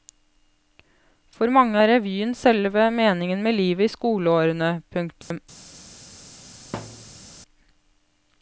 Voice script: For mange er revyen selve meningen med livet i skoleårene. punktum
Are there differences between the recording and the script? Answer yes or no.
no